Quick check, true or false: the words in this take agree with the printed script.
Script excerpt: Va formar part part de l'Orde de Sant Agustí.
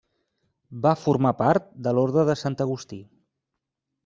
false